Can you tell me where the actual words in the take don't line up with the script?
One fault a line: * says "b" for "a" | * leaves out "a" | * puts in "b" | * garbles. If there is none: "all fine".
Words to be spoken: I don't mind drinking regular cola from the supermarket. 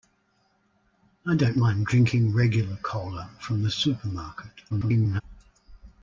* garbles